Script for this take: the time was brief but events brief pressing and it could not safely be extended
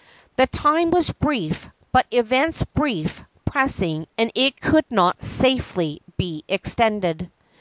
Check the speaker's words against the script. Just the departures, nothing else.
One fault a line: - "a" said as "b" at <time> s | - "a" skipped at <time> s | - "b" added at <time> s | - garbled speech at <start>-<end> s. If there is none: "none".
none